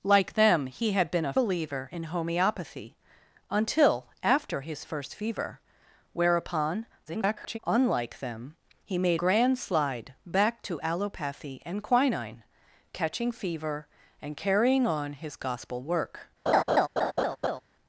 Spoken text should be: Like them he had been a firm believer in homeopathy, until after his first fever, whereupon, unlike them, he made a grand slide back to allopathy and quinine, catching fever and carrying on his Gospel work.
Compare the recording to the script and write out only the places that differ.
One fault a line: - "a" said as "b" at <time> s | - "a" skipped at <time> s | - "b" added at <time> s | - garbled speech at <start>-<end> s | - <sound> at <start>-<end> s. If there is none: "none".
- "firm" skipped at 1.3 s
- garbled speech at 7.1-7.6 s
- "a" skipped at 9.2 s
- laugh at 16.5-17.6 s